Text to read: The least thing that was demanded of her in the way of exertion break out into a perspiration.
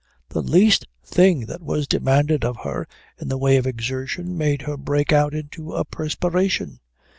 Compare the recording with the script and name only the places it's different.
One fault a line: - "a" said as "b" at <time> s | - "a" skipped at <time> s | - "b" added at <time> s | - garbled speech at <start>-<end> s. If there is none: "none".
- "made her" added at 4.4 s